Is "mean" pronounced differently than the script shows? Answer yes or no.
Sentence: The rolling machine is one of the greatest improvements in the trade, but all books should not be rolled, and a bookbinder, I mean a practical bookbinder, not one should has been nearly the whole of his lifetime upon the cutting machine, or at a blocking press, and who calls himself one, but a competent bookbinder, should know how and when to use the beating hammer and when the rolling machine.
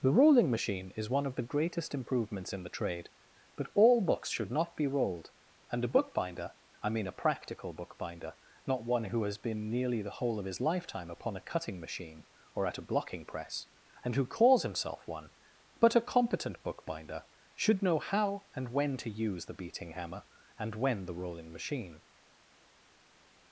no